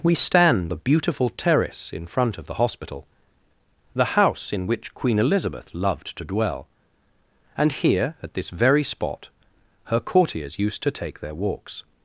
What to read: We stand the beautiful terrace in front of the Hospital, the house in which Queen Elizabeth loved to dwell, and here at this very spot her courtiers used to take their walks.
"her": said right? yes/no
yes